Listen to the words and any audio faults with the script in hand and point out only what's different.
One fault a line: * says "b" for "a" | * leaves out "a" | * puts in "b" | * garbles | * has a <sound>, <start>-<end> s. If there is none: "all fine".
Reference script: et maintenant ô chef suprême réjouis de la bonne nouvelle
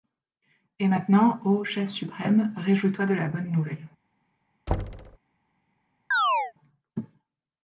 * puts in "toi"
* has a thud, 4.7-5.2 s
* has a chirp, 6.1-6.5 s